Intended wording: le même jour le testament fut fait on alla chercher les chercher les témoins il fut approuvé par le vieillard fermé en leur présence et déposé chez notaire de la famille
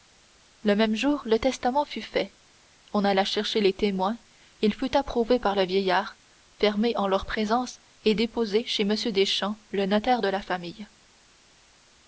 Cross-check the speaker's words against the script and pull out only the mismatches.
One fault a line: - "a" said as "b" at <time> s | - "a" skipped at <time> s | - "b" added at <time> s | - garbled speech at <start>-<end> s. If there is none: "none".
- "chercher les" skipped at 3.7 s
- "m deschamps le" added at 8.8 s